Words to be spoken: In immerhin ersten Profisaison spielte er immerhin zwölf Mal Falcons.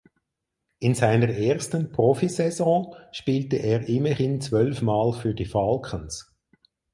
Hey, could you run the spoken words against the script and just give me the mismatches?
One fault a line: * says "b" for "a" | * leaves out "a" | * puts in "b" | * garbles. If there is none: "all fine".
* says "seiner" for "immerhin"
* puts in "für die"